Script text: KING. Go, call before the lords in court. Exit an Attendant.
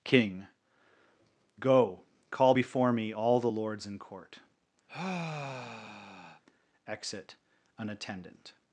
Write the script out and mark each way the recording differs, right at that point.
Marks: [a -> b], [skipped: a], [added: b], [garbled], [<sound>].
KING. Go, call before [added: me all] the lords in court. [sigh] Exit an Attendant.